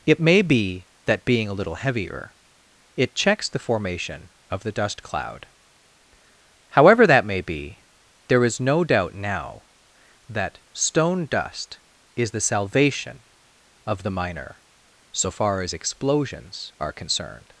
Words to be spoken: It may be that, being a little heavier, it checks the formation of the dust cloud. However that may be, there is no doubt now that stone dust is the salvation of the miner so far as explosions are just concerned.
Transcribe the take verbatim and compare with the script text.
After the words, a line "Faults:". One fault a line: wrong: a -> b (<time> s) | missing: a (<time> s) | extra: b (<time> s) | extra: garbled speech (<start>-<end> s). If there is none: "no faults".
It may be that, being a little heavier, it checks the formation of the dust cloud. However that may be, there is no doubt now that stone dust is the salvation of the miner so far as explosions are concerned.
Faults:
missing: just (16.9 s)